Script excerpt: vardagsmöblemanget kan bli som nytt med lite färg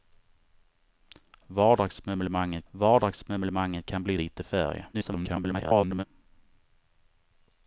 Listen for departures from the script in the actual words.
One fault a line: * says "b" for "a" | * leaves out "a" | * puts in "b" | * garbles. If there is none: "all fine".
* puts in "vardagsmöblemanget"
* leaves out "som nytt med"
* garbles